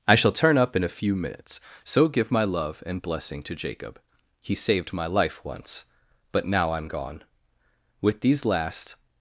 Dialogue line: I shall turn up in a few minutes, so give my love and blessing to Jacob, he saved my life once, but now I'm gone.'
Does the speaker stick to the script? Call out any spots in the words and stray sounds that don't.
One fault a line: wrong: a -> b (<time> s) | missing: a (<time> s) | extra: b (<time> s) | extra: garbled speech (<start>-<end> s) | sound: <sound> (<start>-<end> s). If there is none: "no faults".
extra: With these last (8.0 s)